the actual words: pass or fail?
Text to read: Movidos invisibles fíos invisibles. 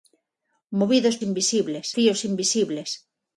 pass